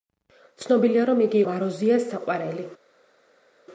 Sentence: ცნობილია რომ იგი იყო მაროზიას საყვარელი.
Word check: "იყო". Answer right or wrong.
wrong